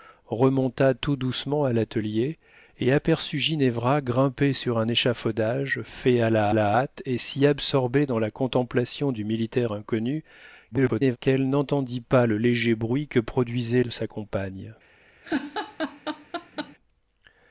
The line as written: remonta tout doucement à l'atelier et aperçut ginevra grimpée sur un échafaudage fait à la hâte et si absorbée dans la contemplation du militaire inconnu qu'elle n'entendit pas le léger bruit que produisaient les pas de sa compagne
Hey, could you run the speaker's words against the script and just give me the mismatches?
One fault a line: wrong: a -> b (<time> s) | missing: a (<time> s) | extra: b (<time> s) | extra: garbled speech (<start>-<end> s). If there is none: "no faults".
extra: la (6.5 s)
extra: garbled speech (10.7-11.2 s)
missing: les pas (13.8 s)